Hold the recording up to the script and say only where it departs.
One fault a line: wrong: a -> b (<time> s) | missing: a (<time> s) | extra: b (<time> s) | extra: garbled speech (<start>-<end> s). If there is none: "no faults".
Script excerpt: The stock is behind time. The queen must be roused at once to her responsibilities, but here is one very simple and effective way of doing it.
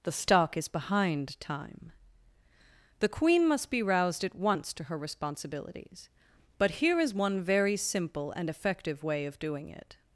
no faults